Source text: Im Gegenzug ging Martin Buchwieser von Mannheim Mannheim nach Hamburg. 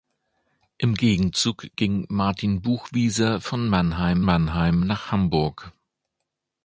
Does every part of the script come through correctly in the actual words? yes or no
yes